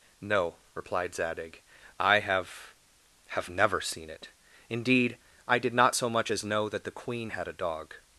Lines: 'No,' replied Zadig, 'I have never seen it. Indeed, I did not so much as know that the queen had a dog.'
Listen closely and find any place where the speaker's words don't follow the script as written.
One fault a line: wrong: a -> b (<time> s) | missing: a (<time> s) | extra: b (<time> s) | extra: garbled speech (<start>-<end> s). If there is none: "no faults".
extra: have (3.3 s)